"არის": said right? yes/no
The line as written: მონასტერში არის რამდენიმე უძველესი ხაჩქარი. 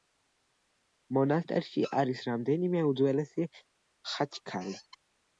yes